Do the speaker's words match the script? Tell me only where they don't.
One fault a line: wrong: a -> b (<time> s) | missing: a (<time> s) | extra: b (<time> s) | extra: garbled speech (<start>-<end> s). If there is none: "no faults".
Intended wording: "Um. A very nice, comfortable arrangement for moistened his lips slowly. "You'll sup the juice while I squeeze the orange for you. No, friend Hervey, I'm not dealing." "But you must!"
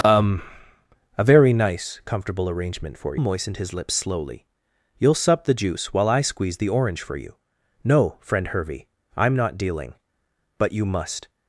no faults